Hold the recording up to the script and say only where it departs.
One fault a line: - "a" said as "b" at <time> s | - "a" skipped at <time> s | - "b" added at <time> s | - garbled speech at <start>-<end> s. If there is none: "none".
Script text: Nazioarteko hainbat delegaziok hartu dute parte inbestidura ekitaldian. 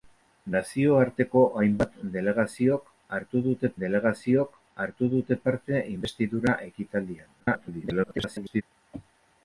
- "delegaziok hartu dute" added at 3.8 s
- garbled speech at 7.4-8.6 s